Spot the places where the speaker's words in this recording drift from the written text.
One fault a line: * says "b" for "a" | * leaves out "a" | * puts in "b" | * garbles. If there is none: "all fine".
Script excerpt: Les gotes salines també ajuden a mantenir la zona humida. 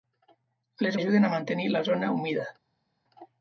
* leaves out "gotes salines també"